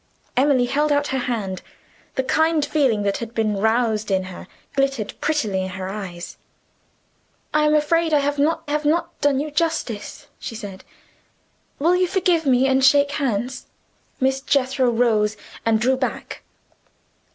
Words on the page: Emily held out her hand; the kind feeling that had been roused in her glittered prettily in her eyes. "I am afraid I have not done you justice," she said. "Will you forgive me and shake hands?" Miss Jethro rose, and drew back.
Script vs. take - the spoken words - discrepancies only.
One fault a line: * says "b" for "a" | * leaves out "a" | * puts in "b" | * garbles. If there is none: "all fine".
* puts in "have not"